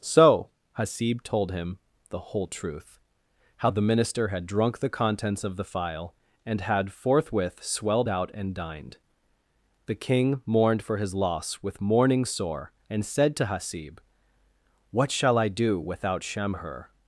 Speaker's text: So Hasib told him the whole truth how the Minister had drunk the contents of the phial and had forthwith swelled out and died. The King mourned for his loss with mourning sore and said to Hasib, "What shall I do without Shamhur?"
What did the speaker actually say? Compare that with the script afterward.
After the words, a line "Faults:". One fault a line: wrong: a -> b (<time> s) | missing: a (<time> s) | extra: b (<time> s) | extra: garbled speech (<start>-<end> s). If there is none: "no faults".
So Hasib told him the whole truth how the Minister had drunk the contents of the phial and had forthwith swelled out and dined. The King mourned for his loss with mourning sore and said to Hasib, "What shall I do without Shamhur?"
Faults:
wrong: died -> dined (8.5 s)